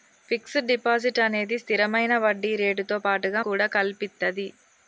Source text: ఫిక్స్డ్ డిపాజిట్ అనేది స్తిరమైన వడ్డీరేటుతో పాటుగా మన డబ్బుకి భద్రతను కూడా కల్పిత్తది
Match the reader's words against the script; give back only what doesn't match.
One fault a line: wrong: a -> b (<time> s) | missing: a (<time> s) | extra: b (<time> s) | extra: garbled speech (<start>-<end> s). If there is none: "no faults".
missing: మన డబ్బుకి భద్రతను (3.4 s)